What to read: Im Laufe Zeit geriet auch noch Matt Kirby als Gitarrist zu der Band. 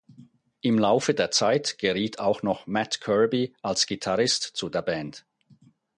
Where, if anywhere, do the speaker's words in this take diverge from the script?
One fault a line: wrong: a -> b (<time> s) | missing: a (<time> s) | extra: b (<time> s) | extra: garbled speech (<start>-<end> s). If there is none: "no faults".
extra: der (1.1 s)